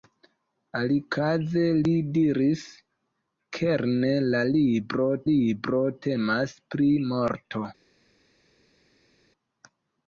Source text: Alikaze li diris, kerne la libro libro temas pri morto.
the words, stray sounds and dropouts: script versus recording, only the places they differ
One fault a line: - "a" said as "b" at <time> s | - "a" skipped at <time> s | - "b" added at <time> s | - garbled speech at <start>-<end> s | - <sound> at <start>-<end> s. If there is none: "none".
none